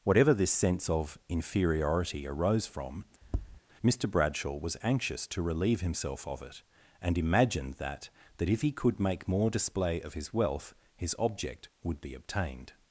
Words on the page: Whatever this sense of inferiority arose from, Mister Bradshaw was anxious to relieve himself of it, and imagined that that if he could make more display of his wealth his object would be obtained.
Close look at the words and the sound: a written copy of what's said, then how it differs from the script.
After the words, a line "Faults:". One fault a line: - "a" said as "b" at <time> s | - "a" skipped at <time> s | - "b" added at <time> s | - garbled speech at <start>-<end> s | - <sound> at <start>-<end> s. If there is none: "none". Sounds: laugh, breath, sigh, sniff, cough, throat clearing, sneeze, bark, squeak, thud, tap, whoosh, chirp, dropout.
Whatever this sense of inferiority arose from, Mister Bradshaw was anxious to relieve himself of it, and imagined that that if he could make more display of his wealth his object would be obtained.
Faults:
- tap at 3.2-3.6 s